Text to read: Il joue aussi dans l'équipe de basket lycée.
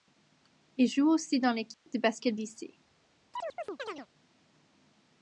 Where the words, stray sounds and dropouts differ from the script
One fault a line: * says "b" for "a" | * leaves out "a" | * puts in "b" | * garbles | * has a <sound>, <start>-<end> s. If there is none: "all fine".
* has a dropout, 1.7-1.9 s
* has a chirp, 3.3-4.1 s